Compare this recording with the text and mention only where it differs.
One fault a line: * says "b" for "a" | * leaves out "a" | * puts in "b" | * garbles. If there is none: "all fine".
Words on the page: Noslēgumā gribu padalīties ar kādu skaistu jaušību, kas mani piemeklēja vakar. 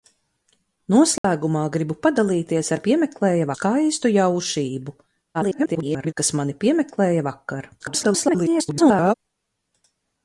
* says "piemeklēja" for "kādu"
* garbles
* garbles